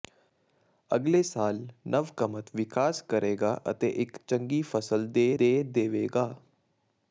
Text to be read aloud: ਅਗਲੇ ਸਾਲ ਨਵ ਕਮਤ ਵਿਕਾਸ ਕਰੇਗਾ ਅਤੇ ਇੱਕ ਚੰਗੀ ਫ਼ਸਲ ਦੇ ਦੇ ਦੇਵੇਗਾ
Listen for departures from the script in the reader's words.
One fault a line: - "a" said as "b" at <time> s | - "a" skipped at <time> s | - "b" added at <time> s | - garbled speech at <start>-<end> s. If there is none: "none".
none